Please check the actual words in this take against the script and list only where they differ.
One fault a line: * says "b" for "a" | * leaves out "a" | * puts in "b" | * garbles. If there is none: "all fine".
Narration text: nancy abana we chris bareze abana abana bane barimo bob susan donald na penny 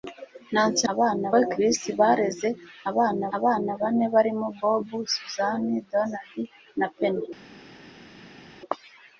all fine